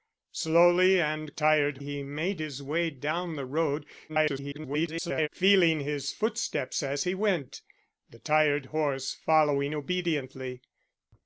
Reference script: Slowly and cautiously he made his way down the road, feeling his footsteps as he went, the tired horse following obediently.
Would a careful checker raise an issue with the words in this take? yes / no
yes